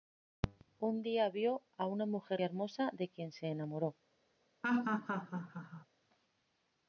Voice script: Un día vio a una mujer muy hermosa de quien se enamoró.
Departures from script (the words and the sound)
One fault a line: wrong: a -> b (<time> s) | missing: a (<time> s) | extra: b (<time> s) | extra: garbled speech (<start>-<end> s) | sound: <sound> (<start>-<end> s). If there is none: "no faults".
missing: muy (2.4 s)
sound: laugh (4.6-5.9 s)